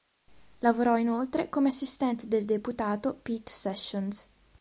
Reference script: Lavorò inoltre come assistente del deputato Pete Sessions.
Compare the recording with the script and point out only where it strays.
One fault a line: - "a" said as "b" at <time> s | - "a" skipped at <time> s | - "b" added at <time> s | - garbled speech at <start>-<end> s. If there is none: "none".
none